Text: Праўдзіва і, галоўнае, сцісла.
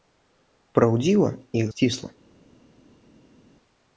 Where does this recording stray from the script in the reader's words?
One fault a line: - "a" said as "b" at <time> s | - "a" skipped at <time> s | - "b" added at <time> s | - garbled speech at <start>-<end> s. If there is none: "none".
- "галоўнае" skipped at 1.7 s